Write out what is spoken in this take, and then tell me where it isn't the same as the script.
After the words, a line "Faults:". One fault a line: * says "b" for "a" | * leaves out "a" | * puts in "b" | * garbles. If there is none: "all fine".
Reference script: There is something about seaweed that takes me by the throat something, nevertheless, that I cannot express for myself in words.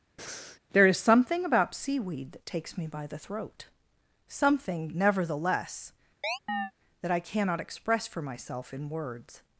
There is something about seaweed that takes me by the throat something, nevertheless, that I cannot express for myself in words.
Faults:
all fine